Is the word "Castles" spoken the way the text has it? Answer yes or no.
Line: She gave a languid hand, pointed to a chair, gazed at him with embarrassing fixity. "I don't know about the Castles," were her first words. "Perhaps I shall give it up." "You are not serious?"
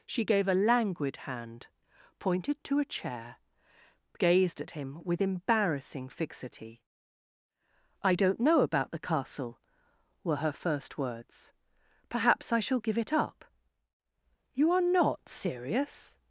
no